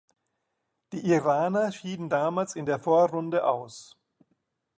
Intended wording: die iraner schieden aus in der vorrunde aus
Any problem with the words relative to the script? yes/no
yes